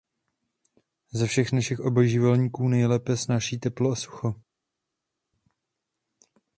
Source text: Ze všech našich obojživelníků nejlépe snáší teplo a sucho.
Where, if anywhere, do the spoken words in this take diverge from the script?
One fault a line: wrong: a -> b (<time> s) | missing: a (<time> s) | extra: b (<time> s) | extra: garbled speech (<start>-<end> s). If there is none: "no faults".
no faults